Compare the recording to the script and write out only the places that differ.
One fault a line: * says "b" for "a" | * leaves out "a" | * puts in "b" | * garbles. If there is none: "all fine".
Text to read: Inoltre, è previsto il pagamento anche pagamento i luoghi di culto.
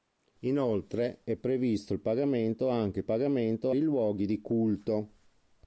all fine